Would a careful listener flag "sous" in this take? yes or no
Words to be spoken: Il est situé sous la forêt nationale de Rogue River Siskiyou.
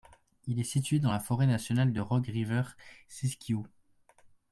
yes